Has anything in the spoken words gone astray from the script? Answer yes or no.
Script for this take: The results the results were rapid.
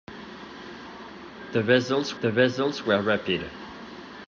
no